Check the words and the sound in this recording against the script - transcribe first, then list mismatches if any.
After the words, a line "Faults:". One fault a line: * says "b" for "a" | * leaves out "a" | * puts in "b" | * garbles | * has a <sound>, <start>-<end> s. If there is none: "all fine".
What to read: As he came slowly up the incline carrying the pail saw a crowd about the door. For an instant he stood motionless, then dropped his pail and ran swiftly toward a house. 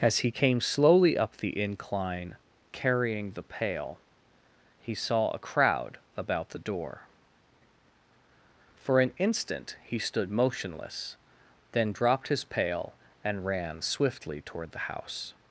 As he came slowly up the incline carrying the pail he saw a crowd about the door. For an instant he stood motionless, then dropped his pail and ran swiftly toward the house.
Faults:
* puts in "he"
* says "the" for "a"